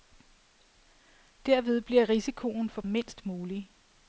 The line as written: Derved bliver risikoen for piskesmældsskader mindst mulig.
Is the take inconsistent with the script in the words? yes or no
yes